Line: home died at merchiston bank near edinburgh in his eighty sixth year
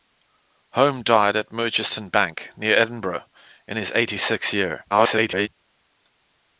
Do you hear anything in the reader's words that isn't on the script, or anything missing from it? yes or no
yes